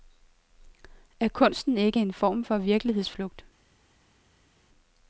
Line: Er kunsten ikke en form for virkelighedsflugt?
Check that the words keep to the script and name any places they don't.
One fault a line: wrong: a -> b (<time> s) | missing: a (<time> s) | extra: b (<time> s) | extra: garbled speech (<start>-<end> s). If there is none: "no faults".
no faults